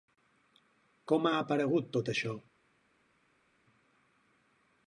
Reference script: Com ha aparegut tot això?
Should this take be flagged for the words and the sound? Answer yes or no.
no